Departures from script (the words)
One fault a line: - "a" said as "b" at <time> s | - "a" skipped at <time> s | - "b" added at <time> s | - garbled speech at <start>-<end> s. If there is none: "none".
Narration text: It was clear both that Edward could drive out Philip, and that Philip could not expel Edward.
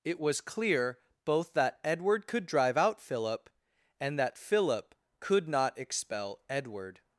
none